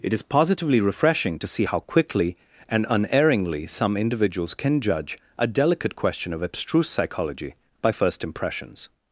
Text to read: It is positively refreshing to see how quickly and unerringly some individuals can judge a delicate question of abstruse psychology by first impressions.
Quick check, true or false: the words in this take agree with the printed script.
true